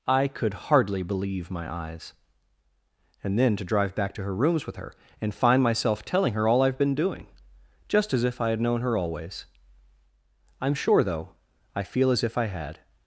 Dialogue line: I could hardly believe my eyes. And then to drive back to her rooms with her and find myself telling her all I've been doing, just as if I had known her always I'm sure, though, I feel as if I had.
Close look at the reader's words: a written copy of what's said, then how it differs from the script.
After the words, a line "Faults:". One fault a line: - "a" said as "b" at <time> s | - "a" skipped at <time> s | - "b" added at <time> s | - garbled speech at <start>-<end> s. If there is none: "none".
I could hardly believe my eyes. And then to drive back to her rooms with her and find myself telling her all I've been doing, just as if I had known her always I'm sure, though, I feel as if I had.
Faults:
none